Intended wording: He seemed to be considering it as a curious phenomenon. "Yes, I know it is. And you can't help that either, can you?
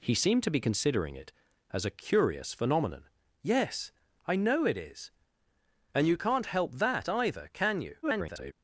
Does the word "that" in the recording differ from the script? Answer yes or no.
no